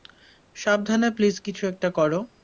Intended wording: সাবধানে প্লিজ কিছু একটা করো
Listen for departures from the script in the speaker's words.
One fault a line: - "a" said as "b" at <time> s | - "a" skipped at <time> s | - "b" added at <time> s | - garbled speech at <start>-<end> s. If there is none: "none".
none